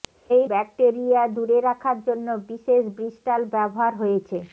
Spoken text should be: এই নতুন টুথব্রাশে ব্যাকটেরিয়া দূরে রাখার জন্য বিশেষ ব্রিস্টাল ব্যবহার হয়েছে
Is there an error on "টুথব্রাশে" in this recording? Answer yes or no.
yes